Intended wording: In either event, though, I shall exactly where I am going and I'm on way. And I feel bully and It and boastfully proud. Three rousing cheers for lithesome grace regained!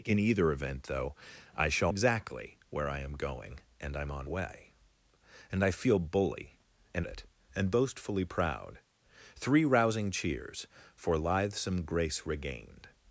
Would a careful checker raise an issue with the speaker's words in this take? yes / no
no